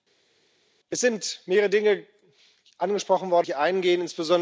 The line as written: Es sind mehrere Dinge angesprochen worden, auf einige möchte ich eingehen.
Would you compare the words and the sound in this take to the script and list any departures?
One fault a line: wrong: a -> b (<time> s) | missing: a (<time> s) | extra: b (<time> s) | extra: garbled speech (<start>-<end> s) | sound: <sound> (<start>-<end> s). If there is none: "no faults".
missing: auf einige möchte (3.5 s)